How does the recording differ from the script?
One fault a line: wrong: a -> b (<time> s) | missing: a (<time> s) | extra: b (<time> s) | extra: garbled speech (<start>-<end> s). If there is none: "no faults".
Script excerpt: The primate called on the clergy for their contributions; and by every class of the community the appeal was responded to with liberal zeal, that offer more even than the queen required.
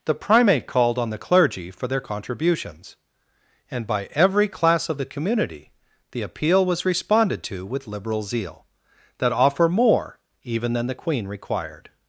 no faults